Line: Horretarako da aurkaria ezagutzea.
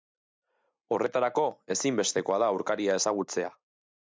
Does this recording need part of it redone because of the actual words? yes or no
yes